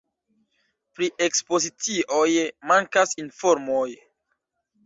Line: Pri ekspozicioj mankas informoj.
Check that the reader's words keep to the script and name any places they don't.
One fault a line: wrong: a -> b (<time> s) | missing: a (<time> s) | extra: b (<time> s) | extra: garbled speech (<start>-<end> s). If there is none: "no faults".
no faults